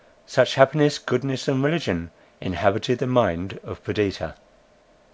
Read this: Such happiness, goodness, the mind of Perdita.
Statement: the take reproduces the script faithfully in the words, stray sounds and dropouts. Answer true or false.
false